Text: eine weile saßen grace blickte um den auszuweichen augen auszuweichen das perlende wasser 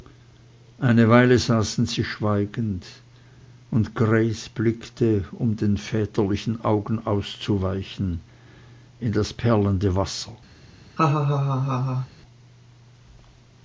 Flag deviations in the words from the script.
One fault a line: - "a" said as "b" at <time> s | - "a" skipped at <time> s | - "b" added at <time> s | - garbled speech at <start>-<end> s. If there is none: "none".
- "sie schweigend und" added at 1.9 s
- "auszuweichen" said as "väterlichen" at 5.8 s
- "in" added at 9.0 s